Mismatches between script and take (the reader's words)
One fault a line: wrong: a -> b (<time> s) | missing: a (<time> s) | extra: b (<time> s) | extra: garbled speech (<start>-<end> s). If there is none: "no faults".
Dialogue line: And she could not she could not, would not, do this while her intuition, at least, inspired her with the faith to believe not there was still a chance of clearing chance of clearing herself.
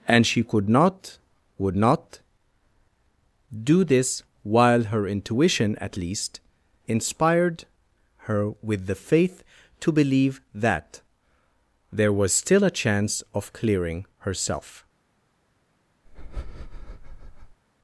missing: she could not (1.2 s)
wrong: not -> that (10.5 s)
missing: chance of clearing (14.0 s)